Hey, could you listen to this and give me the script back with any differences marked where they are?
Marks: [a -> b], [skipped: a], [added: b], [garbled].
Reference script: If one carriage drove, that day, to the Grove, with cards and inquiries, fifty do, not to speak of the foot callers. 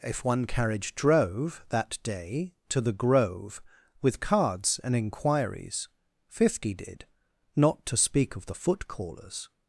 If one carriage drove, that day, to the Grove, with cards and inquiries, fifty [do, -> did] not to speak of the foot callers.